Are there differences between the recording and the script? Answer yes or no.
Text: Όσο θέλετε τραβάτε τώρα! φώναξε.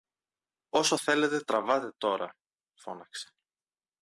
no